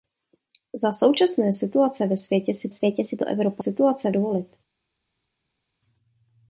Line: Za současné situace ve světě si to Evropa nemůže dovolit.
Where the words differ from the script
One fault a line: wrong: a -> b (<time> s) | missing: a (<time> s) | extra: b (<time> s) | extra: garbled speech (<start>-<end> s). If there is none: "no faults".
extra: světě si (2.7 s)
wrong: nemůže -> situace (3.6 s)